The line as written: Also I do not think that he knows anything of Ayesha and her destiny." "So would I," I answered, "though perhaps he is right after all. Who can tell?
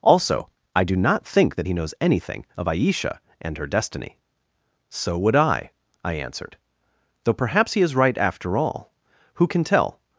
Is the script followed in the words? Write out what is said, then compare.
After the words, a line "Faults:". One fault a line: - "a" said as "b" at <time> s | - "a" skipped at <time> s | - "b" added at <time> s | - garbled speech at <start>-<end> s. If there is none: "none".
Also I do not think that he knows anything of Ayesha and her destiny." "So would I," I answered, "though perhaps he is right after all. Who can tell?
Faults:
none